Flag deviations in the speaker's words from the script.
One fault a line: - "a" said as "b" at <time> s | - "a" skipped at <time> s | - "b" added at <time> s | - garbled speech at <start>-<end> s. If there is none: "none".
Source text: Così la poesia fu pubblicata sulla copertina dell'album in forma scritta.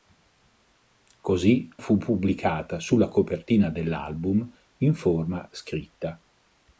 - "la poesia" skipped at 1.7 s